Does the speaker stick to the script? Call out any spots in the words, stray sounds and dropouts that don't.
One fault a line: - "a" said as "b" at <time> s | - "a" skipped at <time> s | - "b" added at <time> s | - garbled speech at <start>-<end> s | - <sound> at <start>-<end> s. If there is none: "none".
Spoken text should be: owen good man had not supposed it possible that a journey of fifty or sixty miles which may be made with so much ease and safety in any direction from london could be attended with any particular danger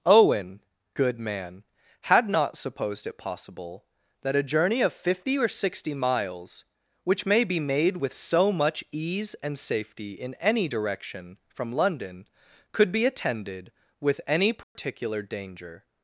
- dropout at 14.6-14.8 s